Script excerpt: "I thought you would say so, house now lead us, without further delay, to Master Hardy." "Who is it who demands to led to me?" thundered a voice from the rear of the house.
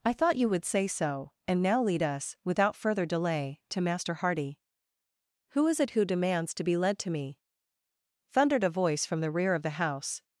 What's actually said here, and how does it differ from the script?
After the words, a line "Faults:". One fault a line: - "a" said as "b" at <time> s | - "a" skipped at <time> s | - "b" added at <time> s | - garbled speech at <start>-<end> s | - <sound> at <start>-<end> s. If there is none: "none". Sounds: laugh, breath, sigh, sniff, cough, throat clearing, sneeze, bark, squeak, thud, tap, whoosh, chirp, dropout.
"I thought you would say so, and now lead us, without further delay, to Master Hardy." "Who is it who demands to be led to me?" thundered a voice from the rear of the house.
Faults:
- "house" said as "and" at 1.5 s
- "be" added at 6.6 s